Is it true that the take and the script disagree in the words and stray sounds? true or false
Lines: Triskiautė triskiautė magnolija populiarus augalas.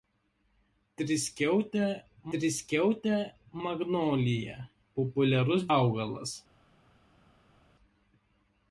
false